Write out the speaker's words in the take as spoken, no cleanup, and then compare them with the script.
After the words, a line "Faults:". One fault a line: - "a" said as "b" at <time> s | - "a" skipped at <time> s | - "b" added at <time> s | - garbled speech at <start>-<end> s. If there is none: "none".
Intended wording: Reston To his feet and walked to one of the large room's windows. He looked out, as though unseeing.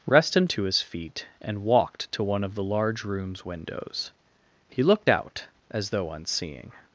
Reston To his feet and walked to one of the large room's windows. He looked out, as though unseeing.
Faults:
none